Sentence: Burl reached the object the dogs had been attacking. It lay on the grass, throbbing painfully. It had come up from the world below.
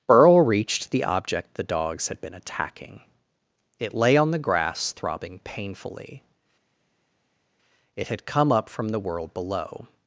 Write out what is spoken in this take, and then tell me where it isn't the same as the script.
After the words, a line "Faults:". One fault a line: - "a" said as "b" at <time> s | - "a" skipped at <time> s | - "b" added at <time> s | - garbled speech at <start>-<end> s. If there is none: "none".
Burl reached the object the dogs had been attacking. It lay on the grass, throbbing painfully. It had come up from the world below.
Faults:
none